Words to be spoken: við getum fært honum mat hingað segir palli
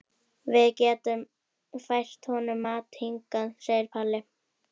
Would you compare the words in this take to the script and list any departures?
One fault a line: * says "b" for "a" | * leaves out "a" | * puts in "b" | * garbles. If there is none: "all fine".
all fine